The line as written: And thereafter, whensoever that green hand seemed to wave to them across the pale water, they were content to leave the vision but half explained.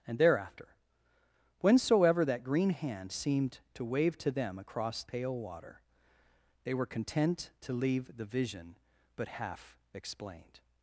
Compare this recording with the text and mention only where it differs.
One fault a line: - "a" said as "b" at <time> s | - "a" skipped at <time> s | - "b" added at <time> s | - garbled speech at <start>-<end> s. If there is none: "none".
- "the" skipped at 5.0 s